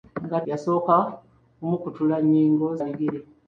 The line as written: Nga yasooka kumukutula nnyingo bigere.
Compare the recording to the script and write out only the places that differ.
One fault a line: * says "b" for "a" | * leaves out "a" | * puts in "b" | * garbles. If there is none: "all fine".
all fine